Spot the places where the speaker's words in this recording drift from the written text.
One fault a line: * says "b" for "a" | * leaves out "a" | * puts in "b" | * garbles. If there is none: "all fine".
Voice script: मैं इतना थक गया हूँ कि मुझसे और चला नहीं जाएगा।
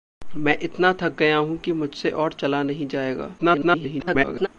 * garbles